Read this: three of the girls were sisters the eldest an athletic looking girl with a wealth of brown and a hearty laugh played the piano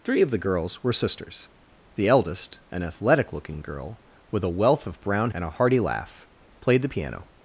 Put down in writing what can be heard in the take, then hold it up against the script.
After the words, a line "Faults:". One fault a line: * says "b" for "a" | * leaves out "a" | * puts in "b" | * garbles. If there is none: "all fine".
three of the girls were sisters the eldest an athletic looking girl with a wealth of brown and a hearty laugh played the piano
Faults:
all fine